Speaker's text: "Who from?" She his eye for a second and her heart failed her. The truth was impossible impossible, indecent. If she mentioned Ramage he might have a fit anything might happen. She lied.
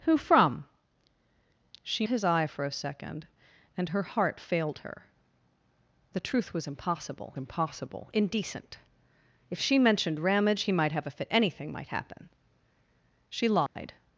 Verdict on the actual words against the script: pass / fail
pass